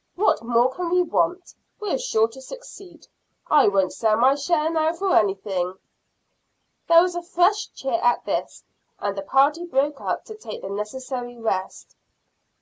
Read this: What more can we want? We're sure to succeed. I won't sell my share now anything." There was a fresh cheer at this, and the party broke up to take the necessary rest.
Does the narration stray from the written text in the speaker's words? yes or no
yes